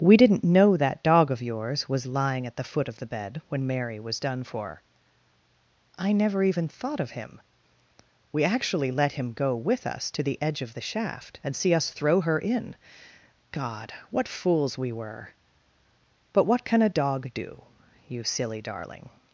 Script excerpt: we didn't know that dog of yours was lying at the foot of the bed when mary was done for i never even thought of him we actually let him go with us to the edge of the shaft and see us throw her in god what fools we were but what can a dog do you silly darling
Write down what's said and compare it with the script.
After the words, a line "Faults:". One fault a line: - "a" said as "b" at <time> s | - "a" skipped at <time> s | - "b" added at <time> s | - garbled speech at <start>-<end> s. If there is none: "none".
we didn't know that dog of yours was lying at the foot of the bed when mary was done for i never even thought of him we actually let him go with us to the edge of the shaft and see us throw her in god what fools we were but what can a dog do you silly darling
Faults:
none